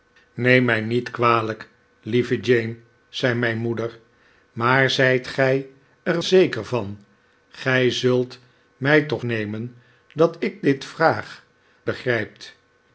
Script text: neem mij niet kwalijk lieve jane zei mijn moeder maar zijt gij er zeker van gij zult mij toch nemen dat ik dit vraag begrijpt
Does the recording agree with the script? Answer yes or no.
yes